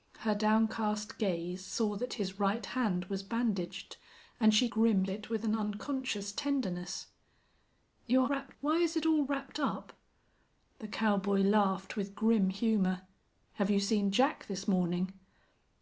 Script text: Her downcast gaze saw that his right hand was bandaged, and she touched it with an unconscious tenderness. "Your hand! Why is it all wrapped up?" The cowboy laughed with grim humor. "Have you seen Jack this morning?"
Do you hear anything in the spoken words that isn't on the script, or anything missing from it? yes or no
yes